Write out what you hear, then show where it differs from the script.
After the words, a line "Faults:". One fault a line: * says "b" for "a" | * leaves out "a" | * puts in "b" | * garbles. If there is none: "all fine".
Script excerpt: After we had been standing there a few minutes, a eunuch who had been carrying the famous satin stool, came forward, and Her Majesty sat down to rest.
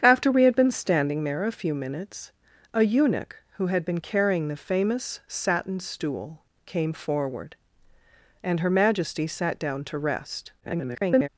After we had been standing there a few minutes, a eunuch who had been carrying the famous satin stool, came forward, and Her Majesty sat down to rest. [garbled]
Faults:
* garbles